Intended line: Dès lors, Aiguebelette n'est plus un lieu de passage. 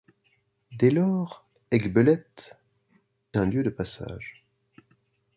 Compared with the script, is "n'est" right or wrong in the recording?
wrong